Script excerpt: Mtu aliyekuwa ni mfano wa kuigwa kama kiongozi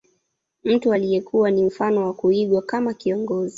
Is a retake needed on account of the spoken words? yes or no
no